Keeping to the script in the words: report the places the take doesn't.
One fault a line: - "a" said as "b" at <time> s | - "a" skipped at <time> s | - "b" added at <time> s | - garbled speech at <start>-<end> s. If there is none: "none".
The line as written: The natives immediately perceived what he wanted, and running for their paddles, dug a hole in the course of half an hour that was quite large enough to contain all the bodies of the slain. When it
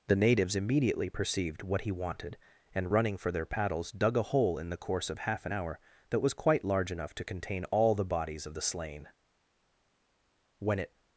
none